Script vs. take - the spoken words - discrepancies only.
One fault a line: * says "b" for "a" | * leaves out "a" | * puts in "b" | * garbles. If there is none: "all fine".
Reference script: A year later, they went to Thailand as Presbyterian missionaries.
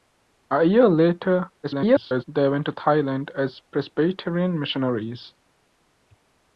* garbles